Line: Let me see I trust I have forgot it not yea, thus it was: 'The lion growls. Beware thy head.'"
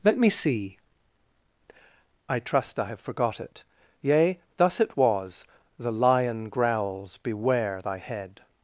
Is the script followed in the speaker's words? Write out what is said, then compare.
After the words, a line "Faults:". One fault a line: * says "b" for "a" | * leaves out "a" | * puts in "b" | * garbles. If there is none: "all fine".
Let me see I trust I have forgot it yea, thus it was: 'The lion growls. Beware thy head.'"
Faults:
* leaves out "not"